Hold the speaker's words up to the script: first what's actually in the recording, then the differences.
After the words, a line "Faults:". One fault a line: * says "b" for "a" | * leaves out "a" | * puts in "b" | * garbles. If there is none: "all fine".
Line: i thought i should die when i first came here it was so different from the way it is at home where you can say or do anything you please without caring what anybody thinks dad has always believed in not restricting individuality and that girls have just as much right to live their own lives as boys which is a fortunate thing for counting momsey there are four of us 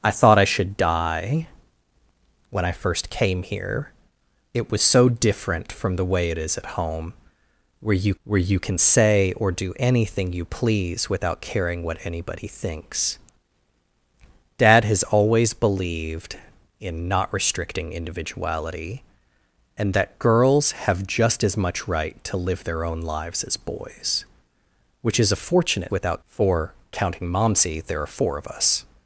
i thought i should die when i first came here it was so different from the way it is at home where you where you can say or do anything you please without caring what anybody thinks dad has always believed in not restricting individuality and that girls have just as much right to live their own lives as boys which is a fortunate without for counting momsey there are four of us
Faults:
* puts in "where you"
* says "without" for "thing"